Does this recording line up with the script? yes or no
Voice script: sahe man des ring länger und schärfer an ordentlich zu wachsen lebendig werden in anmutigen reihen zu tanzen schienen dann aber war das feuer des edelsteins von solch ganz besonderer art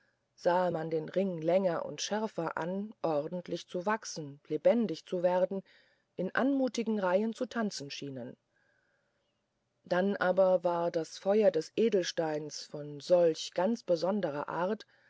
no